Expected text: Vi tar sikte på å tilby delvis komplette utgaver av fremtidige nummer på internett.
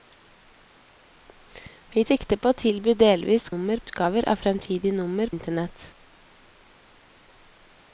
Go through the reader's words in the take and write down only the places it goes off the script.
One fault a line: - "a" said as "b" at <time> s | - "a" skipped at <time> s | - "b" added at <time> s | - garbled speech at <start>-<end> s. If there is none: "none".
- "tar" skipped at 2.0 s
- "komplette" said as "nummer" at 3.5 s
- "på" skipped at 5.3 s